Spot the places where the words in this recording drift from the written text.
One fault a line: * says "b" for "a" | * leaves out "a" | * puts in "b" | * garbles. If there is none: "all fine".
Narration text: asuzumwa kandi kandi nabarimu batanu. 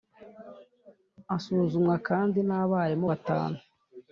* leaves out "kandi"